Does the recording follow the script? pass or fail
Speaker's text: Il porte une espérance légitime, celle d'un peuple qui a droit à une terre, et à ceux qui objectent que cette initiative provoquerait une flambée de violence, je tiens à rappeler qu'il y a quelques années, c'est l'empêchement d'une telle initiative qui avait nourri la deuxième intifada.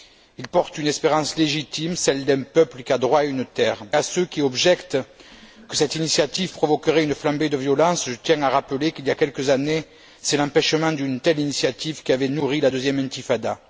fail